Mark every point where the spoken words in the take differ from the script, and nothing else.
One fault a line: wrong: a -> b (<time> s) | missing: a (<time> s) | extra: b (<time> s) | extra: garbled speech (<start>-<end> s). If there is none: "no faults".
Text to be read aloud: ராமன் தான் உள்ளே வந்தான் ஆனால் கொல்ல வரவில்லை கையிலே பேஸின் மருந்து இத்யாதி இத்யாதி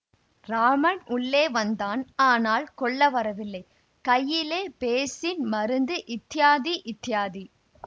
missing: தான் (1.0 s)